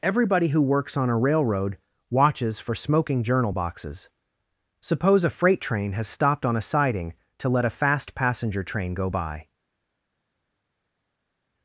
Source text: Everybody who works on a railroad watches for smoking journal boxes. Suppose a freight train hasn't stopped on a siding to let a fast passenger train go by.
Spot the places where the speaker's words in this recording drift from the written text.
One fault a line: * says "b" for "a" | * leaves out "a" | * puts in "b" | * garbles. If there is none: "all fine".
* says "has" for "hasn't"